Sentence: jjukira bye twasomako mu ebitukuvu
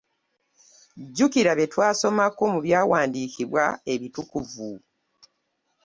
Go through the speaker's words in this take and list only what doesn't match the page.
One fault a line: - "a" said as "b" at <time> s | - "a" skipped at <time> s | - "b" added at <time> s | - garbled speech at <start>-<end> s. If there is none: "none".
- "byawandiikibwa" added at 2.6 s